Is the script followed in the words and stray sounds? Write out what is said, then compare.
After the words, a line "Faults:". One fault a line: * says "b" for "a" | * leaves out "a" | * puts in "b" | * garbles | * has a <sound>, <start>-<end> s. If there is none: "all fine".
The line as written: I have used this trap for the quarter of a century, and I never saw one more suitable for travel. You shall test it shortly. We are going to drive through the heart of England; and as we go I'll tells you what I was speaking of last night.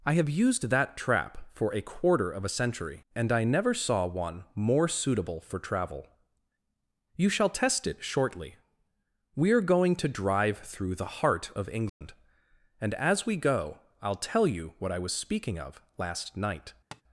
I have used that trap for a quarter of a century, and I never saw one more suitable for travel. You shall test it shortly. We are going to drive through the heart of England; and as we go I'll tell you what I was speaking of last night.
Faults:
* says "that" for "this"
* says "a" for "the"
* has a dropout, 11.9-12.0 s
* says "tell" for "tells"
* has a tap, 16.9-17.0 s